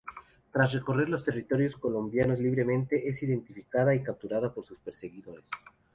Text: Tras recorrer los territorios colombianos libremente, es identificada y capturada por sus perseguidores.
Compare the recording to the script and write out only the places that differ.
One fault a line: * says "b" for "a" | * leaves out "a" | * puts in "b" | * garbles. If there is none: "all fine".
all fine